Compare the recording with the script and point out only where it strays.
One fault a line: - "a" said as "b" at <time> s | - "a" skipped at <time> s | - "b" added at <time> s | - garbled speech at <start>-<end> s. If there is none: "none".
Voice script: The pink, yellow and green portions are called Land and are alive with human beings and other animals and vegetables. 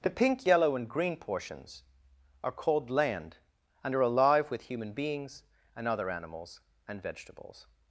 none